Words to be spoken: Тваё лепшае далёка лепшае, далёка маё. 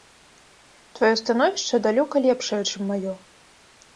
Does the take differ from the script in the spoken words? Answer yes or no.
yes